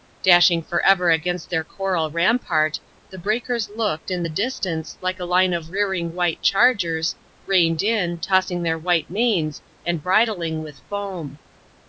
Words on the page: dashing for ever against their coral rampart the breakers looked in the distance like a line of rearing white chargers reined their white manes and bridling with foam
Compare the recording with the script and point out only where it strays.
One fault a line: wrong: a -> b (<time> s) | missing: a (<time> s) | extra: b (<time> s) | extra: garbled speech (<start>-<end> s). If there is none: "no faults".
extra: in tossing (7.8 s)